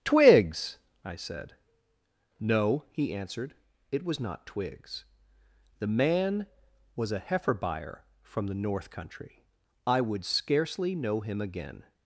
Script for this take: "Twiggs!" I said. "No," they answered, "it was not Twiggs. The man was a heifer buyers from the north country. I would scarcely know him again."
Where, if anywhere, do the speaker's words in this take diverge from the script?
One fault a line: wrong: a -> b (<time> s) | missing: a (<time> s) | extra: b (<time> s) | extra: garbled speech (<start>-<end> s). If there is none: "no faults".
wrong: they -> he (2.9 s)
wrong: buyers -> buyer (7.5 s)